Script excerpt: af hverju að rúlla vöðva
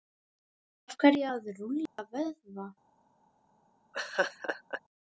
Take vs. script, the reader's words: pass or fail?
pass